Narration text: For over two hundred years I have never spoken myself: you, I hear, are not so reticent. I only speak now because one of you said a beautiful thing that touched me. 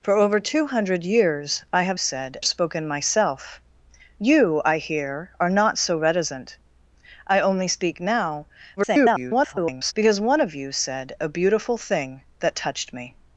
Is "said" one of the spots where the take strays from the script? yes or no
no